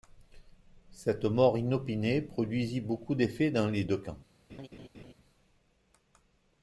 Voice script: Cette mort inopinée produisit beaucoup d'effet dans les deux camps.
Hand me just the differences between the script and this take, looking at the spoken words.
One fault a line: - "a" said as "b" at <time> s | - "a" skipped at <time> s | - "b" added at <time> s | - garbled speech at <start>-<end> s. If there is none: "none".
none